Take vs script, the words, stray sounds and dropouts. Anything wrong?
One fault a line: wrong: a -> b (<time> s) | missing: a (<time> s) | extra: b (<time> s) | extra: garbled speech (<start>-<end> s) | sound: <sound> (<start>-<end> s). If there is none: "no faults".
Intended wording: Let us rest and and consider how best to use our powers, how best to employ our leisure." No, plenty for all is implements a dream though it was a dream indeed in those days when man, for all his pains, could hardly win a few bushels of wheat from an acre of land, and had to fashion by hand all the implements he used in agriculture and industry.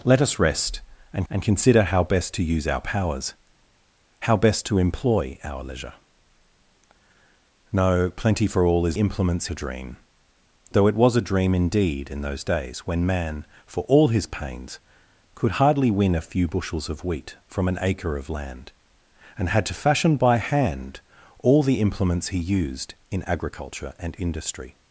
no faults